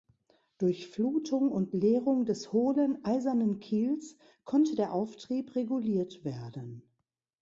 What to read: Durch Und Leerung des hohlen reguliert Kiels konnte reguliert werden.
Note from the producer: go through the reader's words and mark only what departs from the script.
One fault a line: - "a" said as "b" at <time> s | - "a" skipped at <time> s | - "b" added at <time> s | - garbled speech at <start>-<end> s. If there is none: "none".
- "Flutung" added at 0.9 s
- "reguliert" said as "eisernen" at 3.0 s
- "der Auftrieb" added at 4.8 s